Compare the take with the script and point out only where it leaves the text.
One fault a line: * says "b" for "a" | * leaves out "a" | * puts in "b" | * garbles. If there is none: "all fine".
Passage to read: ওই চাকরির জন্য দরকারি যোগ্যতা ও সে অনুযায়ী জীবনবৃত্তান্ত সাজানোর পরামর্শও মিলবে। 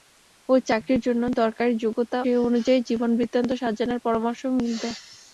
* leaves out "ও"